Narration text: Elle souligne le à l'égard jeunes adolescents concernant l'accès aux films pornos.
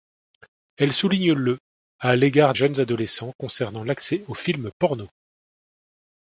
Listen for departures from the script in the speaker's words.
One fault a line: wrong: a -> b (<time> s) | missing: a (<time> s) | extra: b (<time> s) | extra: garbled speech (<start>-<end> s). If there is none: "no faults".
no faults